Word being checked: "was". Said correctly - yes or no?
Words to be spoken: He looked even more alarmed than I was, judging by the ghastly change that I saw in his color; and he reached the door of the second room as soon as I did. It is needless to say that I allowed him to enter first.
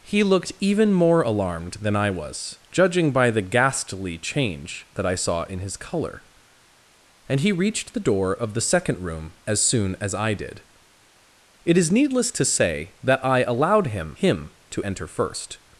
yes